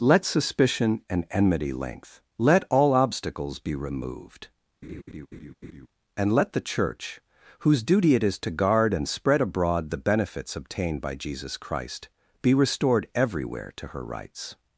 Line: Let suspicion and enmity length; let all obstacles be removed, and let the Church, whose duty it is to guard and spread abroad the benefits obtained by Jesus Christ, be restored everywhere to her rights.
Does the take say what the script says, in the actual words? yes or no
yes